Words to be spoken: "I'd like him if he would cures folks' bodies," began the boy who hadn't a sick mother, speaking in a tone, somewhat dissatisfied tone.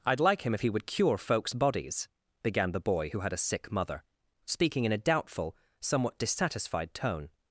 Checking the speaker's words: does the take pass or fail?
fail